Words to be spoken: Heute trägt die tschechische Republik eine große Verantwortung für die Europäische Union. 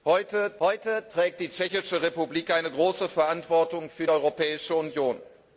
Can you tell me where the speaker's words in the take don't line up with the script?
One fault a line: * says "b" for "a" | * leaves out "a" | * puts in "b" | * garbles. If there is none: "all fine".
* puts in "heute"
* leaves out "die"